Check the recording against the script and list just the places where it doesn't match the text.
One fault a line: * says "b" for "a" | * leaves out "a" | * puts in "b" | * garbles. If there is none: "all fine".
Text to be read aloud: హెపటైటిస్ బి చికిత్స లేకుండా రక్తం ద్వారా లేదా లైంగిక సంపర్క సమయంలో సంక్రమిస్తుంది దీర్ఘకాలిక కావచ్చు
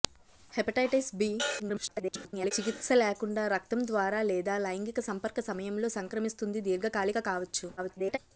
* garbles
* garbles